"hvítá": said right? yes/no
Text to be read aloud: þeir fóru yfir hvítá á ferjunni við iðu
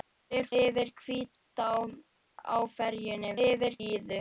yes